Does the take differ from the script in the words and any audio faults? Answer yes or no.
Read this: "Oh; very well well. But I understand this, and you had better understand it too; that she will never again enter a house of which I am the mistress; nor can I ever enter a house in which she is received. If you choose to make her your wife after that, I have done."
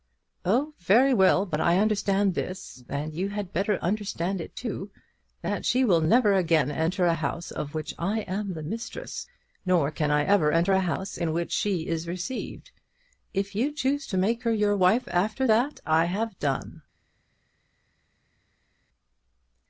yes